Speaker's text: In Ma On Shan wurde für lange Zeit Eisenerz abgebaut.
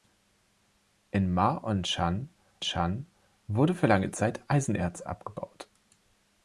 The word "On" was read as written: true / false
true